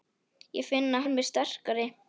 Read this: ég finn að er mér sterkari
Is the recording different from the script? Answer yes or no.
no